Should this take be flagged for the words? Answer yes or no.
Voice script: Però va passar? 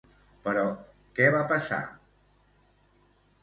yes